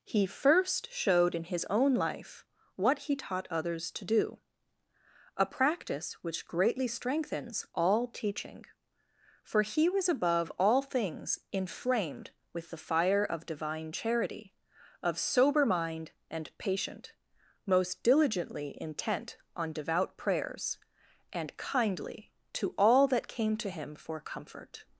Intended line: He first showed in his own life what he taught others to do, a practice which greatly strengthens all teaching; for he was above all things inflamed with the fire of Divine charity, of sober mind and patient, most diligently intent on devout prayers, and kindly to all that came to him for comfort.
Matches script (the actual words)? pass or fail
pass